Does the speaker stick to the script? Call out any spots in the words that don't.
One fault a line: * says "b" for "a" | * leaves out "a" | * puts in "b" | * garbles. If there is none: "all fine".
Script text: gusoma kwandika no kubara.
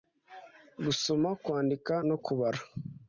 all fine